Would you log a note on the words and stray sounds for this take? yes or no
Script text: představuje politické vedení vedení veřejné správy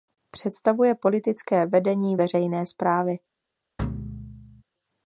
yes